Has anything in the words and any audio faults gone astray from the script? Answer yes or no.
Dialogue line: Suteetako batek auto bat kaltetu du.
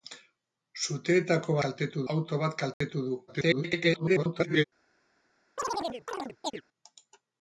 yes